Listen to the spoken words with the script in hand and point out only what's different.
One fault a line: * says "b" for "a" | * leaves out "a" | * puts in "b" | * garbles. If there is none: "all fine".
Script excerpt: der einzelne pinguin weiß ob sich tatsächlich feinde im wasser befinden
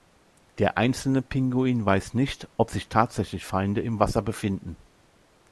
* puts in "nicht"